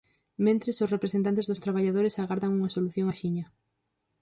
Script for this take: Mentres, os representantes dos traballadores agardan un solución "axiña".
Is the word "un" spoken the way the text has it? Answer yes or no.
no